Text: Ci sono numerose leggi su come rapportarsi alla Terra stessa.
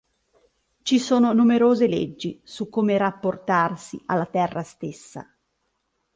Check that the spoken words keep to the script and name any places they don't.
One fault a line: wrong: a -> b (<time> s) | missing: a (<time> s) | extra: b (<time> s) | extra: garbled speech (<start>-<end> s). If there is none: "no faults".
no faults